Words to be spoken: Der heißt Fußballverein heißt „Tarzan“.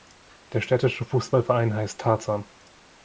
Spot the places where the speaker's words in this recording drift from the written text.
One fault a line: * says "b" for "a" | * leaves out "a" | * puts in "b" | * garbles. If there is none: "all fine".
* says "städtische" for "heißt"